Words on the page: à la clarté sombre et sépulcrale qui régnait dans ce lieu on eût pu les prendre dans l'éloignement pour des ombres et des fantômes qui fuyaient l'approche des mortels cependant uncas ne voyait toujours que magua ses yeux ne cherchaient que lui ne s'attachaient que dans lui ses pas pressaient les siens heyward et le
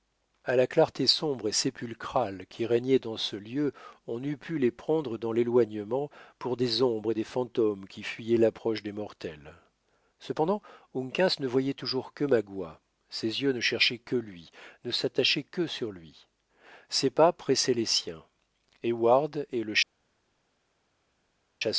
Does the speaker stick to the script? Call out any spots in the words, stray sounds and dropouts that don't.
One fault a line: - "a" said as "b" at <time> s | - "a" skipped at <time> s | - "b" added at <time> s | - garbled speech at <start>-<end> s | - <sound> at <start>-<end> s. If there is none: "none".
- "dans" said as "sur" at 15.7 s